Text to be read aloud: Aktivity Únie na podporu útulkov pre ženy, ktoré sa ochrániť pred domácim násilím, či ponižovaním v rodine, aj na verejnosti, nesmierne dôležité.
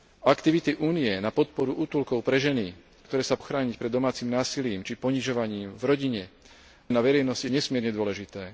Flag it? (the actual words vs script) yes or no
no